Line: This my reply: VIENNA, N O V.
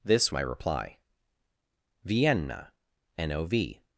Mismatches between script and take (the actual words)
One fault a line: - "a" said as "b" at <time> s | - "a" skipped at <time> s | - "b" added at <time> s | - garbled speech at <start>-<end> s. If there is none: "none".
none